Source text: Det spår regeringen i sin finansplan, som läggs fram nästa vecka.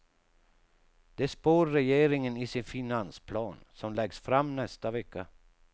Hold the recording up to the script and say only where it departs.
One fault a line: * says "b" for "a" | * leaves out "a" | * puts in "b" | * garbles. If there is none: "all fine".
all fine